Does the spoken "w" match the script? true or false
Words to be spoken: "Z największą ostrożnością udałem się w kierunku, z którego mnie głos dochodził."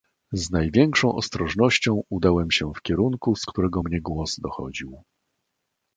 true